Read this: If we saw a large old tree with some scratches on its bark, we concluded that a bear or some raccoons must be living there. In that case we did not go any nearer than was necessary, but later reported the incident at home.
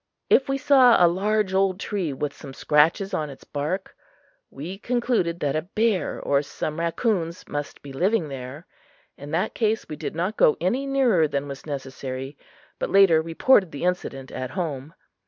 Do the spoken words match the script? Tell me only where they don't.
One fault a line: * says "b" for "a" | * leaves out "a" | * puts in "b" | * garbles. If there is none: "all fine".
all fine